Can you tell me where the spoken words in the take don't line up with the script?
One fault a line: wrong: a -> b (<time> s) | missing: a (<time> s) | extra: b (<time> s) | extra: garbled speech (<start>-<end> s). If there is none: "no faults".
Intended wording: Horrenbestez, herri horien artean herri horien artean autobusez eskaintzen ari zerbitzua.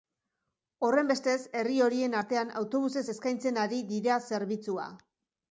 missing: herri horien artean (2.5 s)
extra: dira (3.9 s)